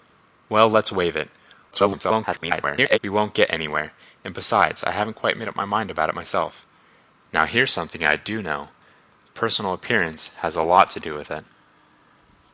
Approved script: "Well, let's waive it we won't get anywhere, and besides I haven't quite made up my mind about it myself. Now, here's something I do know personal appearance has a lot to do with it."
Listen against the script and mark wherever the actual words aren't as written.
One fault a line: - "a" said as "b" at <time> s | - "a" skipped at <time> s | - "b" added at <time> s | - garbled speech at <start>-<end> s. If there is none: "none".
- garbled speech at 1.7-3.0 s